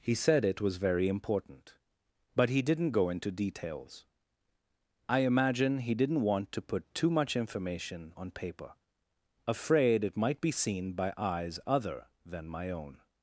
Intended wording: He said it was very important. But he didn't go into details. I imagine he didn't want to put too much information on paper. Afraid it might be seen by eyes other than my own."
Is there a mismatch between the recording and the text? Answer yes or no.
no